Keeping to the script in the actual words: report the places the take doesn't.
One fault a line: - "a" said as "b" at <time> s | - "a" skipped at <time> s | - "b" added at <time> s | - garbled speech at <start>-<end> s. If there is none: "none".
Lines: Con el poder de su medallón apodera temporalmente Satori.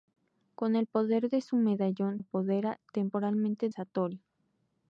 none